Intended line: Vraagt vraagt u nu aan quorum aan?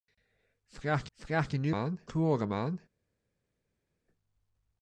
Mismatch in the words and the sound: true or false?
false